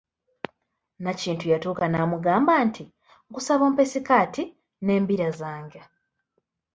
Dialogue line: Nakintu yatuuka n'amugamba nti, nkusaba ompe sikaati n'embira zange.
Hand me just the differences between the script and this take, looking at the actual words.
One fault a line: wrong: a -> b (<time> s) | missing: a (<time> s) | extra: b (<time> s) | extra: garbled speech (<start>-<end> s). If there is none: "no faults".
no faults